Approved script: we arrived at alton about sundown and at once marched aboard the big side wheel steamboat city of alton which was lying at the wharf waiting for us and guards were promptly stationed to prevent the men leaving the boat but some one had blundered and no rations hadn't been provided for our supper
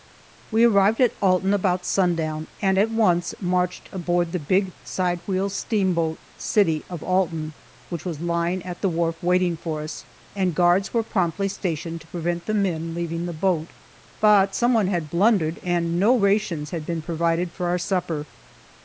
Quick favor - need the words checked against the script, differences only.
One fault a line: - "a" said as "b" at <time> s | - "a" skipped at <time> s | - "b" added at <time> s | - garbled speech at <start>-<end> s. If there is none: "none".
- "hadn't" said as "had" at 16.7 s